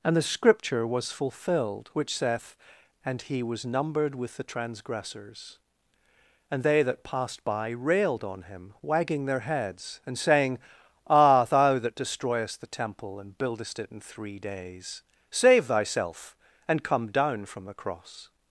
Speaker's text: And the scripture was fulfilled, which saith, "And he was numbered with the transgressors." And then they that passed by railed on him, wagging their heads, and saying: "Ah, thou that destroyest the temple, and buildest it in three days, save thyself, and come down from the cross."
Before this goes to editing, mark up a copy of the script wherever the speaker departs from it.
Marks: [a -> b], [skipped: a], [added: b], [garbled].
And the scripture was fulfilled, which saith, "And he was numbered with the transgressors." And [skipped: then] they that passed by railed on him, wagging their heads, and saying: "Ah, thou that destroyest the temple, and buildest it in three days, save thyself, and come down from the cross."